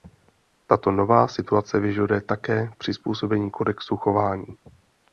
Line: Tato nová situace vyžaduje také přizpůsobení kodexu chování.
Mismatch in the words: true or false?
false